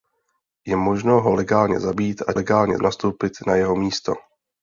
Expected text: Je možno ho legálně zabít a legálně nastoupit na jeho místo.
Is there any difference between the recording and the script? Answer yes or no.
no